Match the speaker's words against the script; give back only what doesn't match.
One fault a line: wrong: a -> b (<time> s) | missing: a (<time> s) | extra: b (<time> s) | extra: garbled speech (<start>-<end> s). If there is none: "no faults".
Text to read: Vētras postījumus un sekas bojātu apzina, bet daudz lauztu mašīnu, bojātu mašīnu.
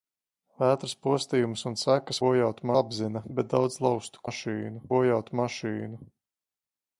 no faults